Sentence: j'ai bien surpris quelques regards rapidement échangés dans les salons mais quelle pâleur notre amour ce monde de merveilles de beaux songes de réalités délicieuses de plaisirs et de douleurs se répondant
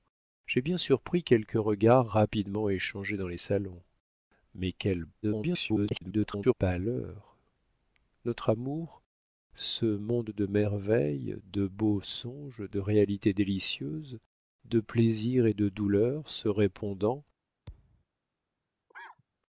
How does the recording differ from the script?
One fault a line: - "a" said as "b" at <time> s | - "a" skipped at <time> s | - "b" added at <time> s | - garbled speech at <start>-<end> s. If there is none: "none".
- garbled speech at 5.2-6.5 s